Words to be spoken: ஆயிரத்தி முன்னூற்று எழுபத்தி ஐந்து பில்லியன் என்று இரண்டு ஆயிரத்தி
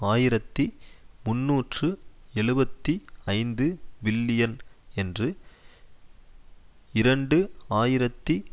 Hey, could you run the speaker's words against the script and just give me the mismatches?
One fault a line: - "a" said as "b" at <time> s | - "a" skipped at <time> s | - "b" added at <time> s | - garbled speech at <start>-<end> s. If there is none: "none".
none